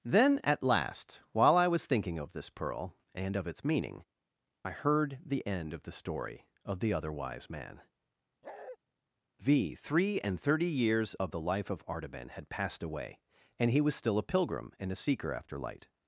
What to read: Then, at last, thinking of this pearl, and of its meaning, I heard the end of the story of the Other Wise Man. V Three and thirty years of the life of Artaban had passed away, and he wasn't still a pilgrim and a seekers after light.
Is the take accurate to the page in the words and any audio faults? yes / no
no